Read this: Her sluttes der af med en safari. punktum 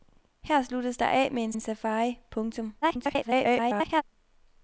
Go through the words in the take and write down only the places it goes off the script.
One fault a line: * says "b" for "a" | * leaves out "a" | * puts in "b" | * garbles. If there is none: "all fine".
* puts in "en"
* garbles